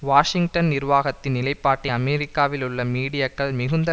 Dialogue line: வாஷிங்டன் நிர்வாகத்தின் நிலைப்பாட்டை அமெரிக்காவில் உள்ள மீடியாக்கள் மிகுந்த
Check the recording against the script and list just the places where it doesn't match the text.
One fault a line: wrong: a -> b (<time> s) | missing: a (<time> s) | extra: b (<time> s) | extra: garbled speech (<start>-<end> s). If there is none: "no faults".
no faults